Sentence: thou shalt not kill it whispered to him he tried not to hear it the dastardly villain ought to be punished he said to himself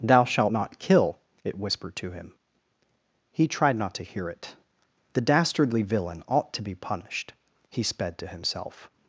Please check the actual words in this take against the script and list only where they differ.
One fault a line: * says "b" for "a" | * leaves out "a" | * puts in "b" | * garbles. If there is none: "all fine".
* says "sped" for "said"